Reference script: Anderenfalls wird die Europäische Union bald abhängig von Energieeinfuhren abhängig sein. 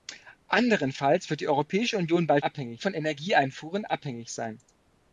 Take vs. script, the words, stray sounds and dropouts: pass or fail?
pass